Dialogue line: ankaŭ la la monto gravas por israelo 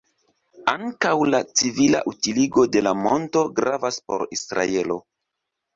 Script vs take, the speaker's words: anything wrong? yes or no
yes